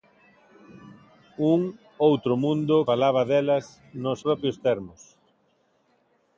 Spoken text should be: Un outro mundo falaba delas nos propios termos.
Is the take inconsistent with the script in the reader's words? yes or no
no